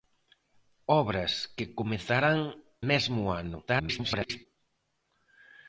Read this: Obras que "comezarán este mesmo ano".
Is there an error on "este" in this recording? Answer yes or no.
yes